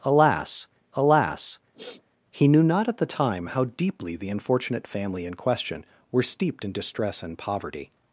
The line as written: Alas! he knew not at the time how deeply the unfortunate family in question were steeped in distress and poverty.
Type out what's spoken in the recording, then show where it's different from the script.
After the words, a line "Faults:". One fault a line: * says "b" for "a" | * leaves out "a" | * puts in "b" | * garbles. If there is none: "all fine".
Alas alas! he knew not at the time how deeply the unfortunate family in question were steeped in distress and poverty.
Faults:
* puts in "alas"